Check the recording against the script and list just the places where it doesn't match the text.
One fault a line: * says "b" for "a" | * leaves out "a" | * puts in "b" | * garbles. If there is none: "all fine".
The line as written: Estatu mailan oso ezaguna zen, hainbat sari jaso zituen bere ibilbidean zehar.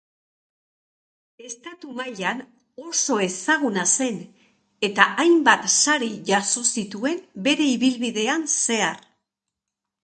* puts in "eta"